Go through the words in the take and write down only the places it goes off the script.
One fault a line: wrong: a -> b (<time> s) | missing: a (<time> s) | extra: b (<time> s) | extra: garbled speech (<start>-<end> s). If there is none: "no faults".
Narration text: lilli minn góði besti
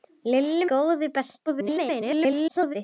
missing: minn (0.7 s)
extra: garbled speech (1.5-2.8 s)